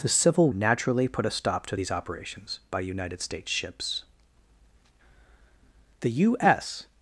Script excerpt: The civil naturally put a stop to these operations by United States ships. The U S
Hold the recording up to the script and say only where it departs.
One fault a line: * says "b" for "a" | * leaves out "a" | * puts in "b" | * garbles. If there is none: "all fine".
all fine